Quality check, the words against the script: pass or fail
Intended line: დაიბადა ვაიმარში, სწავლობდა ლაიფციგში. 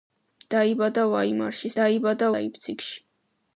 fail